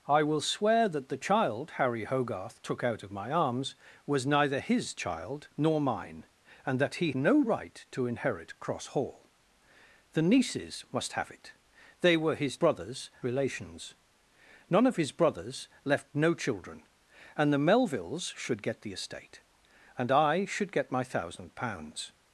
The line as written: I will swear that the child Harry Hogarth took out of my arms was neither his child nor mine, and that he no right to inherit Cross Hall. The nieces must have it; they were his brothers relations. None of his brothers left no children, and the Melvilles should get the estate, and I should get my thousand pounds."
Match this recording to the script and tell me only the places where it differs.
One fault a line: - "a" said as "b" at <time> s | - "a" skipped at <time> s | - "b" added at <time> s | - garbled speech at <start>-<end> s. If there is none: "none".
none